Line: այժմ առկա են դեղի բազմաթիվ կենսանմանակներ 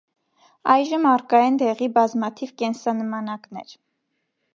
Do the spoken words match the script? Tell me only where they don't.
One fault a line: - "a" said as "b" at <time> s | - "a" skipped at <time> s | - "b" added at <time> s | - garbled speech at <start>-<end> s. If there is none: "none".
none